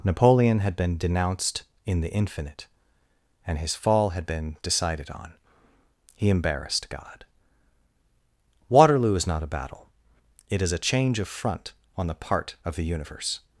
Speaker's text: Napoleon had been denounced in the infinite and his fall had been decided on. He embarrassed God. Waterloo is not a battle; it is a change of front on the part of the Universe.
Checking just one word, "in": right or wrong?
right